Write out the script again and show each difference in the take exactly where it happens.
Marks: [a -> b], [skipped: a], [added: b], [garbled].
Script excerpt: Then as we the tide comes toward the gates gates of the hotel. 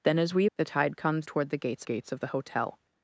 Then as we the tide comes toward the gates gates of the hotel.